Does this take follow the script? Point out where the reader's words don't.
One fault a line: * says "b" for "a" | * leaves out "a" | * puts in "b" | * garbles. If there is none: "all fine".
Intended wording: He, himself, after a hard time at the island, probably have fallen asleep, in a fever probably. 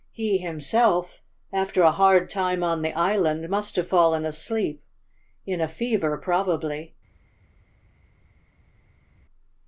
* says "on" for "at"
* says "must" for "probably"